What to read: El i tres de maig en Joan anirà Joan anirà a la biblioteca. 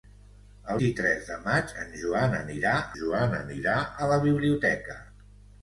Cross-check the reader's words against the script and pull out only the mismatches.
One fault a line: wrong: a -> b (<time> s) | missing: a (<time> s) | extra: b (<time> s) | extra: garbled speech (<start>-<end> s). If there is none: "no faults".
no faults